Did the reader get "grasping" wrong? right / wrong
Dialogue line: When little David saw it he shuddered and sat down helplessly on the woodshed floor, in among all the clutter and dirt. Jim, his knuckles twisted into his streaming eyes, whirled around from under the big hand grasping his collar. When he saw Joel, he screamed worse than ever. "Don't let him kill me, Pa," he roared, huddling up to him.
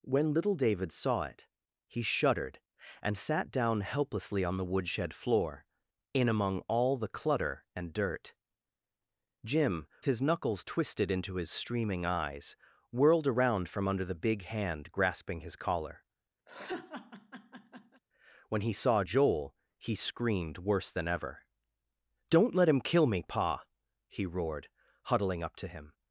right